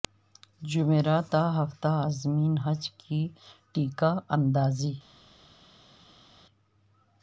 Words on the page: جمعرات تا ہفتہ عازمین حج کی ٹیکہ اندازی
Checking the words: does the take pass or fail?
pass